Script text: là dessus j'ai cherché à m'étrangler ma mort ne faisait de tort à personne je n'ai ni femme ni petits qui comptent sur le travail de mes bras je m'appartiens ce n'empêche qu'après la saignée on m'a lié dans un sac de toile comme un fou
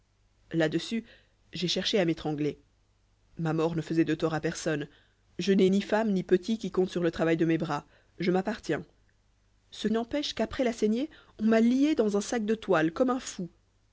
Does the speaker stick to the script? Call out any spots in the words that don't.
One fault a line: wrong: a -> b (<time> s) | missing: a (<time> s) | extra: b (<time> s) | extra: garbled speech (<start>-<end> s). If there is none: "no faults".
no faults